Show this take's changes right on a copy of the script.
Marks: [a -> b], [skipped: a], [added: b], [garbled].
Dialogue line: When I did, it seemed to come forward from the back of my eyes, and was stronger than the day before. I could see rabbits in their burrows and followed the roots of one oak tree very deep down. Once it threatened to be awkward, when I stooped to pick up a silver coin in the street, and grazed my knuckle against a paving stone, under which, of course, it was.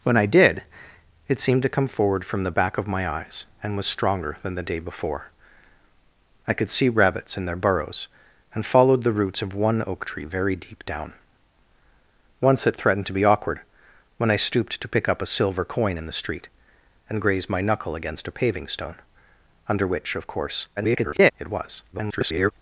When I did, it seemed to come forward from the back of my eyes, and was stronger than the day before. I could see rabbits in their burrows and followed the roots of one oak tree very deep down. Once it threatened to be awkward, when I stooped to pick up a silver coin in the street, and grazed my knuckle against a paving stone, under which, of course, [garbled] it was. [garbled]